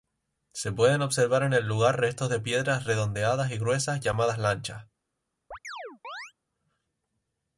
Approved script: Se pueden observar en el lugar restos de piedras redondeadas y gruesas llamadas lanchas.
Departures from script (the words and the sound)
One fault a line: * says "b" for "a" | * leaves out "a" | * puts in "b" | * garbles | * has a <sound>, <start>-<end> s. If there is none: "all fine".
* has a chirp, 5.5-6.3 s